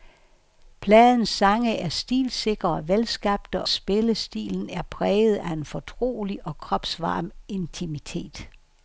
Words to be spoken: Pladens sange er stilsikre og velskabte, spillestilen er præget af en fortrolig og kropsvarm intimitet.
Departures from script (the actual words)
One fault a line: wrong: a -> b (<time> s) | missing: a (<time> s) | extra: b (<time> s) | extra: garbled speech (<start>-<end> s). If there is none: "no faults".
no faults